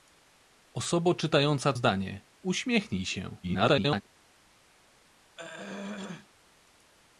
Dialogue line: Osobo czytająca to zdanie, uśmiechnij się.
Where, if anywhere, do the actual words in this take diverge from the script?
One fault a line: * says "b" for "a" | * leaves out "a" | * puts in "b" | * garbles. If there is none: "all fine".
* leaves out "to"
* garbles